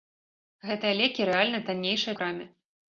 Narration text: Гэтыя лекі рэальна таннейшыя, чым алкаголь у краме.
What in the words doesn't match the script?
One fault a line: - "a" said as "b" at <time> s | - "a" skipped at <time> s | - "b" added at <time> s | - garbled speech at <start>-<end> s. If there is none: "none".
- "чым алкаголь" skipped at 2.2 s